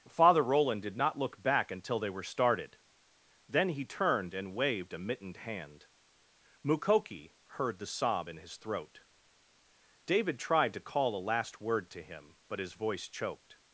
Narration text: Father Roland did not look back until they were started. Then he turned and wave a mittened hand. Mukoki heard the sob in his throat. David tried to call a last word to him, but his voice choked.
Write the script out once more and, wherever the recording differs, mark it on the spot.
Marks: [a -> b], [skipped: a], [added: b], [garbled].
Father Roland did not look back until they were started. Then he turned and [wave -> waved] a mittened hand. Mukoki heard the sob in his throat. David tried to call a last word to him, but his voice choked.